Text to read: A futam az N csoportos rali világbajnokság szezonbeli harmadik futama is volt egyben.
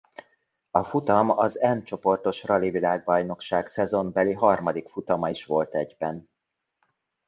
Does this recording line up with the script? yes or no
yes